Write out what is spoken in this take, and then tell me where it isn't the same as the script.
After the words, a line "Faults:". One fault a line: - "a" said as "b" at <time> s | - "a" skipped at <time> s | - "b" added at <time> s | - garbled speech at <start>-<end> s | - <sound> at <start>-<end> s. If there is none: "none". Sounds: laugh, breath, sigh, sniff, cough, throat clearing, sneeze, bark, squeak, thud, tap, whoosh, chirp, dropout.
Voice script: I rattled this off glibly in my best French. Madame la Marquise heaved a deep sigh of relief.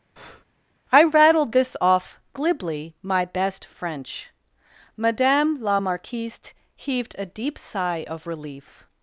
I rattled this off glibly my best French. Madame la Marquise heaved a deep sigh of relief.
Faults:
- breath at 0.2-0.4 s
- "in" skipped at 2.9 s